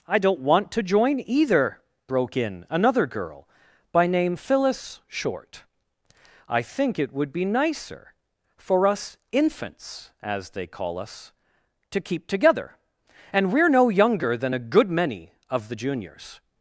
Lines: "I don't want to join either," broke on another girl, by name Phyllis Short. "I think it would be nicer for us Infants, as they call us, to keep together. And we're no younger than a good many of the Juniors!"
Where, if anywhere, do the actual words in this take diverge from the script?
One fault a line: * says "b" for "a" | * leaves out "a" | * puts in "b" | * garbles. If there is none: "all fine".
* says "in" for "on"